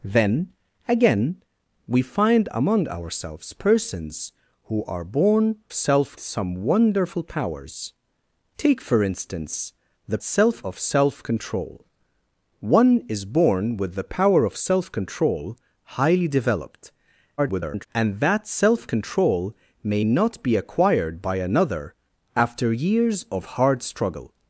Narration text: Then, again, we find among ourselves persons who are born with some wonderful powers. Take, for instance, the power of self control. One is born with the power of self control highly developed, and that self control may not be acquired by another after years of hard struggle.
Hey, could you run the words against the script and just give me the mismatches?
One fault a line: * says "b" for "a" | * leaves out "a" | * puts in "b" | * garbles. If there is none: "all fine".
* says "self" for "with"
* says "self" for "power"
* garbles